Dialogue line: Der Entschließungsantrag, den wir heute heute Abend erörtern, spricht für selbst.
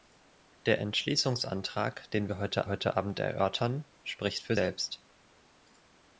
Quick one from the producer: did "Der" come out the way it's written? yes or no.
yes